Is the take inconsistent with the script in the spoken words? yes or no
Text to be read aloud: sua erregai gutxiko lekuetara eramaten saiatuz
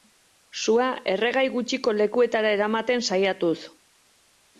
no